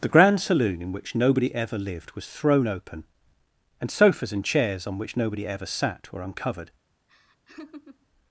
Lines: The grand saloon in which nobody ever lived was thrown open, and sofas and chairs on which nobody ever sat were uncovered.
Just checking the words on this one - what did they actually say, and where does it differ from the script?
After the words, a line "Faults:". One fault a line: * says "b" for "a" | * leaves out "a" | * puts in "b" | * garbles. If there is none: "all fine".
The grand saloon in which nobody ever lived was thrown open, and sofas and chairs on which nobody ever sat were uncovered.
Faults:
all fine